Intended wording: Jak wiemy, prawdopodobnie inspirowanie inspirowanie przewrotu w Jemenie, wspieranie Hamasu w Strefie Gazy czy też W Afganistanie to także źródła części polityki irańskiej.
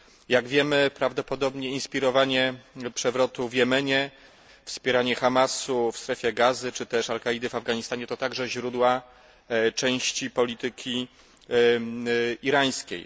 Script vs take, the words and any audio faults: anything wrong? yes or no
yes